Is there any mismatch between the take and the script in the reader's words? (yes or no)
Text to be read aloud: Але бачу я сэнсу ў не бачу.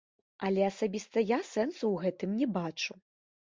yes